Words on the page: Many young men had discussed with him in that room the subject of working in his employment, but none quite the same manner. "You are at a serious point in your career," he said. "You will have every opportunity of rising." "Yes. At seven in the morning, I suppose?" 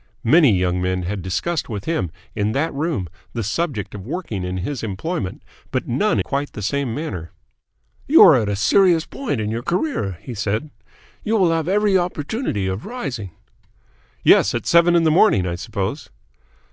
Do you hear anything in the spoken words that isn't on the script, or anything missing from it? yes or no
no